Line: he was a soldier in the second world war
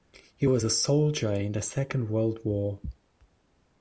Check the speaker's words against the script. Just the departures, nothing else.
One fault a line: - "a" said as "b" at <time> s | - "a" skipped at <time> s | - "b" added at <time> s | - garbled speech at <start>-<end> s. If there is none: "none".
none